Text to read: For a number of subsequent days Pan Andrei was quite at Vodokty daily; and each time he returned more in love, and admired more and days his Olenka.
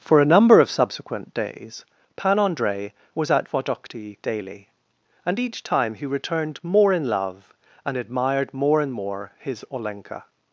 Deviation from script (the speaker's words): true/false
true